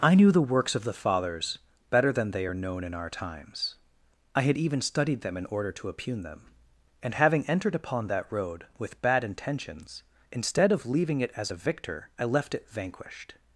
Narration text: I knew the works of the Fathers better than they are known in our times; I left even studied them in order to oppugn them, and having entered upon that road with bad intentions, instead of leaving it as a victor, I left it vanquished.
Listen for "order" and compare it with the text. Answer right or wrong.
right